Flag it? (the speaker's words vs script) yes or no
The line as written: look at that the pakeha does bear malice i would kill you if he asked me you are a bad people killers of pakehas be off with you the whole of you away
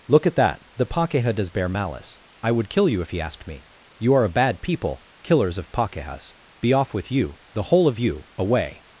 no